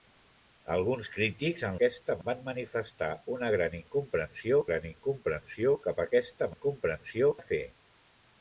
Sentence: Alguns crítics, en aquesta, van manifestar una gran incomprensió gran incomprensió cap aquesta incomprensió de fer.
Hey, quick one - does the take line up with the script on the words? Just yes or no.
yes